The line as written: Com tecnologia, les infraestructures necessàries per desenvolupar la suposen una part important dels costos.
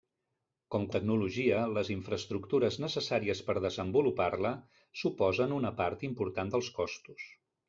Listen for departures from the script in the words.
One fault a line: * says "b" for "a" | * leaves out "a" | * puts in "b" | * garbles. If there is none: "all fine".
all fine